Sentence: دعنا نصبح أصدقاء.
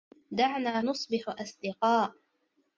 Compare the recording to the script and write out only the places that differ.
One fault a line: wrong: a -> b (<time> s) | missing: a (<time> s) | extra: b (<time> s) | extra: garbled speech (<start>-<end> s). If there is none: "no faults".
no faults